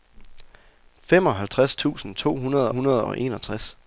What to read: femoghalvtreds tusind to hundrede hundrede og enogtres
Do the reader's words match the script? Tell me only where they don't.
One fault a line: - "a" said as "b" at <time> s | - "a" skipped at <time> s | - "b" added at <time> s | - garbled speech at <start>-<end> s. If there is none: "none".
none